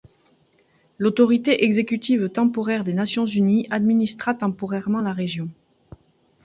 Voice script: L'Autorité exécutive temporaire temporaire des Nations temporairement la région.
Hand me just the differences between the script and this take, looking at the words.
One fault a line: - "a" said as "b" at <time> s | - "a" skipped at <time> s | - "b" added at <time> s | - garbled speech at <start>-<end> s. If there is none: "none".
- "temporaire" skipped at 2.8 s
- "unies administra" added at 3.3 s